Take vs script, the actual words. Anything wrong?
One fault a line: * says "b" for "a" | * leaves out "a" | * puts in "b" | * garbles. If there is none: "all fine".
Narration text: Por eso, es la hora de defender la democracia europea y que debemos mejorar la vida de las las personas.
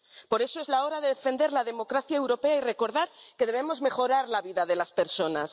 * puts in "recordar"
* leaves out "las"